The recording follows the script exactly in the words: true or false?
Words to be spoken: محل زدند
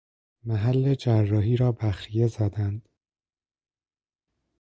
false